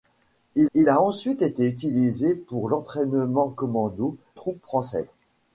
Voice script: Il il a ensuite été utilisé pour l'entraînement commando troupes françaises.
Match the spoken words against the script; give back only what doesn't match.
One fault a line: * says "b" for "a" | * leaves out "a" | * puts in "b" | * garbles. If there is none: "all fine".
all fine